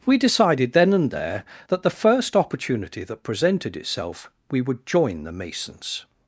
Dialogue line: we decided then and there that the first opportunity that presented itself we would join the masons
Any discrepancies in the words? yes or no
no